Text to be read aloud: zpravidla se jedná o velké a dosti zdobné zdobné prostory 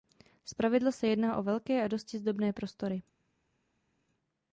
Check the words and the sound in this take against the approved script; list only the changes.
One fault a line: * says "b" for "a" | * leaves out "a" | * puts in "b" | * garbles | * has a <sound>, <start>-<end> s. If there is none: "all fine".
* leaves out "zdobné"